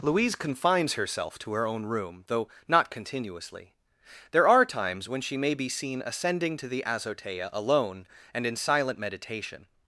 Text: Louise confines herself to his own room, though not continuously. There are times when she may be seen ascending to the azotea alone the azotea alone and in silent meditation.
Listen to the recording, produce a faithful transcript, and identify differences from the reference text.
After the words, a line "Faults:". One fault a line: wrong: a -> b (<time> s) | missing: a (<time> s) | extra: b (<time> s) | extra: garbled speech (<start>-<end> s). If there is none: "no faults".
Louise confines herself to her own room, though not continuously. There are times when she may be seen ascending to the azotea alone and in silent meditation.
Faults:
wrong: his -> her (1.5 s)
missing: the azotea alone (8.1 s)